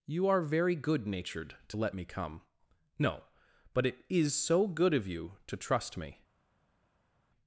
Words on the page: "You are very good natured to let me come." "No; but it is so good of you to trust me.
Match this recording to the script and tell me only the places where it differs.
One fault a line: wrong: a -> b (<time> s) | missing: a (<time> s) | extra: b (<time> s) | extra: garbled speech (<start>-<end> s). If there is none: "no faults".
no faults